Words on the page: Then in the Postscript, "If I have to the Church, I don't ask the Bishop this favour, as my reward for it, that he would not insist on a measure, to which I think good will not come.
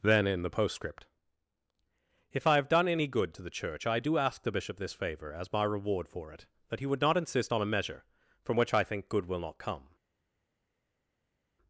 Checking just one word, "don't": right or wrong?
wrong